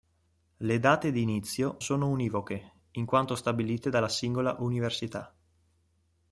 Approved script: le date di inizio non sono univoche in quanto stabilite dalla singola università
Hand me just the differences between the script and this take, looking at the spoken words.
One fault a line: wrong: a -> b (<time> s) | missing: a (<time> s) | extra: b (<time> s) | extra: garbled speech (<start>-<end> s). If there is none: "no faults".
missing: non (1.8 s)